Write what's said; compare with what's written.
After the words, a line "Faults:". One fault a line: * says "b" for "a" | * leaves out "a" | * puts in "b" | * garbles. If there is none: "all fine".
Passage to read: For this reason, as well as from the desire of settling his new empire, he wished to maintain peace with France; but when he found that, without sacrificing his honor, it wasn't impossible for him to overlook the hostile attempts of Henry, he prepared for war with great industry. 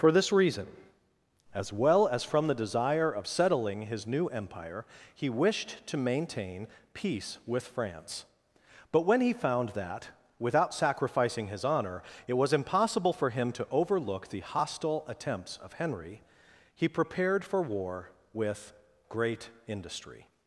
For this reason, as well as from the desire of settling his new empire, he wished to maintain peace with France; but when he found that, without sacrificing his honor, it was impossible for him to overlook the hostile attempts of Henry, he prepared for war with great industry.
Faults:
* says "was" for "wasn't"